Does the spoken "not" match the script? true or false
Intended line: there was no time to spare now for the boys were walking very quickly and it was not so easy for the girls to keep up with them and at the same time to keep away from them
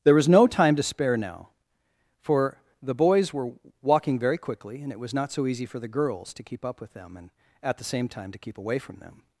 true